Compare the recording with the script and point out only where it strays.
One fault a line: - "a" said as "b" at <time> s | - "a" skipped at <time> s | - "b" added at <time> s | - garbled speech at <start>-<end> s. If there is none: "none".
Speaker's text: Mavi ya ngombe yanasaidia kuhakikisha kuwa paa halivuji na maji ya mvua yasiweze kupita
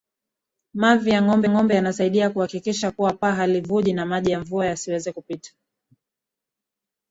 - "ngombe" added at 1.5 s